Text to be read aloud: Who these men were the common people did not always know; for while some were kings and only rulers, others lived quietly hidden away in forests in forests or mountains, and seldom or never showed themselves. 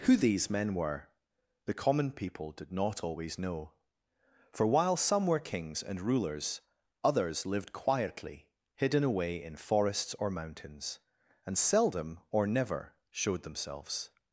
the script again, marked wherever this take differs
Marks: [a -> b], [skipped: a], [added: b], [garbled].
Who these men were the common people did not always know; for while some were kings and [skipped: only] rulers, others lived quietly hidden away in forests [skipped: in forests] or mountains, and seldom or never showed themselves.